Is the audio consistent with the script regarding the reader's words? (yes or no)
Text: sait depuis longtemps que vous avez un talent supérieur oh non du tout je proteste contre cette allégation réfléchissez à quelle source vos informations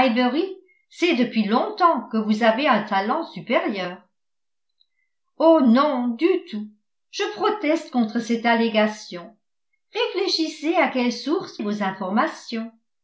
yes